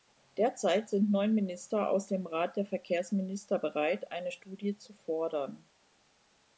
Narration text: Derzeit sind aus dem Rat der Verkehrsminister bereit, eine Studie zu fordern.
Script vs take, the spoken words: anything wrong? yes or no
yes